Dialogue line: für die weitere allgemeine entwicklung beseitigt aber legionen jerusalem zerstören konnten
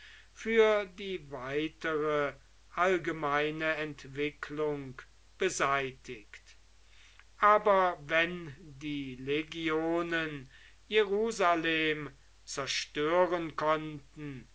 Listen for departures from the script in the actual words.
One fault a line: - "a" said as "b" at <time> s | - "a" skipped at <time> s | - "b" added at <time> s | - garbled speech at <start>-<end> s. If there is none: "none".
- "wenn die" added at 8.0 s